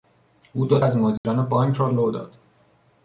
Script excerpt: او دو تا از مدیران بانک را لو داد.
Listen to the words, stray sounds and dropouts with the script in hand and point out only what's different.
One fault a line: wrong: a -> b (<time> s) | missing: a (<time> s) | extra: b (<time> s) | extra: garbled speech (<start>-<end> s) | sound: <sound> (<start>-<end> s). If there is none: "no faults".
missing: تا (0.8 s)
sound: dropout (1.2-1.2 s)